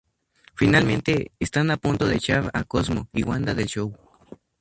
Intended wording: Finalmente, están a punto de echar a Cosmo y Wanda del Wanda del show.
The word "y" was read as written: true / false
true